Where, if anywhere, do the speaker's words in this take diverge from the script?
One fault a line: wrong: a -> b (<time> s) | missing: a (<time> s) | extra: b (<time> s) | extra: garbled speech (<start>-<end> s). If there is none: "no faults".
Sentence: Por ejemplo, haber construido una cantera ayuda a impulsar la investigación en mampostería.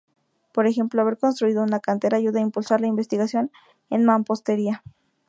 no faults